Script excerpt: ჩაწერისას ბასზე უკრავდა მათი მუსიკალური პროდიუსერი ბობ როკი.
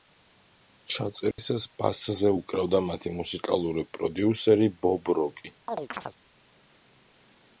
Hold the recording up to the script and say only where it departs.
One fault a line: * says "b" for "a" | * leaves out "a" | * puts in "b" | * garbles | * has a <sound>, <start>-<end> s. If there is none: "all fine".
* has a dropout, 1.3-1.4 s
* has a chirp, 5.7-6.2 s